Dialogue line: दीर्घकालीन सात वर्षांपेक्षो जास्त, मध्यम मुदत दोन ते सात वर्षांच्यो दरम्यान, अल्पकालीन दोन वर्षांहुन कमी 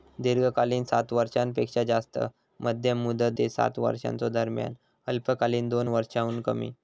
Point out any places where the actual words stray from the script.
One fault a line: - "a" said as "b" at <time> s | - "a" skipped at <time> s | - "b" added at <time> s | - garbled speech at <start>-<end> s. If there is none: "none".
- "दोन" skipped at 3.3 s